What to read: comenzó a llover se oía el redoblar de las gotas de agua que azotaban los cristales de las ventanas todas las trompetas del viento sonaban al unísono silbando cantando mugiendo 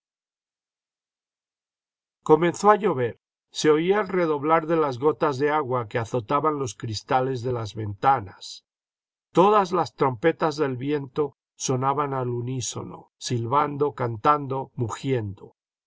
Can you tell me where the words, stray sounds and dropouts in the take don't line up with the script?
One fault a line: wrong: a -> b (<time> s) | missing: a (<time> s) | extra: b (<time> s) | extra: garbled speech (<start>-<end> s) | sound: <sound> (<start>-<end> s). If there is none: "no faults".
no faults